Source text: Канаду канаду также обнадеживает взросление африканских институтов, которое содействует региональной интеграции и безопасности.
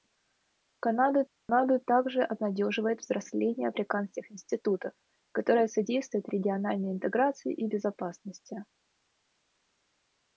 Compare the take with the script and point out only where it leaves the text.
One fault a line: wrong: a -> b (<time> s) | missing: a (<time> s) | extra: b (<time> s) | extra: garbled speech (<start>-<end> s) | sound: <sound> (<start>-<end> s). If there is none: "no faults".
sound: dropout (1.3-1.5 s)